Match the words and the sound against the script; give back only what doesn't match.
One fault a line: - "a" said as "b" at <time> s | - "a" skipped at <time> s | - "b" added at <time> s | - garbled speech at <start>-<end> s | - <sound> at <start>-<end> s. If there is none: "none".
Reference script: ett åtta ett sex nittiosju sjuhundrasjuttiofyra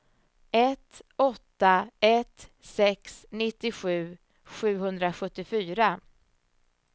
none